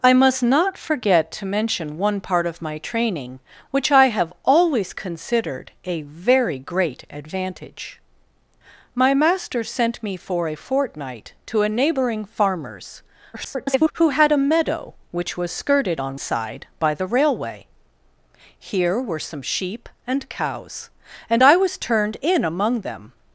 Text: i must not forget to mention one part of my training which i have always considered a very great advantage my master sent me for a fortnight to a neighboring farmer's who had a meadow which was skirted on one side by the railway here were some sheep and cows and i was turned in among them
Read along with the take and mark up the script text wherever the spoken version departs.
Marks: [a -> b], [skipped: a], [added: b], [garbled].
i must not forget to mention one part of my training which i have always considered a very great advantage my master sent me for a fortnight to a neighboring farmer's [garbled] who had a meadow which was skirted on [skipped: one] side by the railway here were some sheep and cows and i was turned in among them